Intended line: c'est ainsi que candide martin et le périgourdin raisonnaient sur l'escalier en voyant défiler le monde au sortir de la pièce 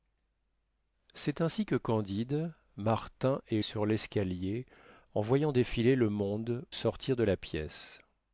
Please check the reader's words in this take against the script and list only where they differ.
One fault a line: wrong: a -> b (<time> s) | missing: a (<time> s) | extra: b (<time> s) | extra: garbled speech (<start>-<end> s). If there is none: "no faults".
missing: le périgourdin raisonnaient (3.6 s)
missing: au (6.6 s)